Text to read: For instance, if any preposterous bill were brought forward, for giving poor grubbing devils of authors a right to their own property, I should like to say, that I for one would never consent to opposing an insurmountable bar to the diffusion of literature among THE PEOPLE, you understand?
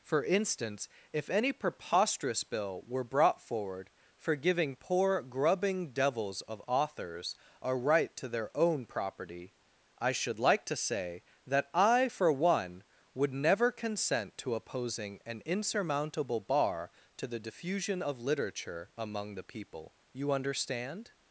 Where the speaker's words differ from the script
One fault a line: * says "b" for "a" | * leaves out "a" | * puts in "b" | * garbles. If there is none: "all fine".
all fine